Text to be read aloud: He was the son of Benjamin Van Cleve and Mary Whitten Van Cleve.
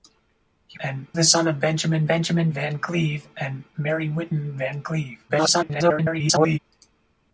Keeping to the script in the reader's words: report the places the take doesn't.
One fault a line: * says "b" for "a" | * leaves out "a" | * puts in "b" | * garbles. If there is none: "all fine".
* says "and" for "was"
* puts in "Benjamin"
* garbles